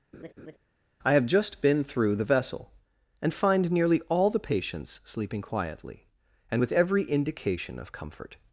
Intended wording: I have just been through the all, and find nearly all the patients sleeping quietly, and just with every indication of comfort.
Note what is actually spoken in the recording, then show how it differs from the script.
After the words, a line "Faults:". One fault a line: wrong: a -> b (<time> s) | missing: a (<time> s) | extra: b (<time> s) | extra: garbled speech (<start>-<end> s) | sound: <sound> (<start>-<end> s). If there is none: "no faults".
I have just been through the vessel, and find nearly all the patients sleeping quietly, and with every indication of comfort.
Faults:
sound: laugh (0.1-0.6 s)
wrong: all -> vessel (2.2 s)
missing: just (6.6 s)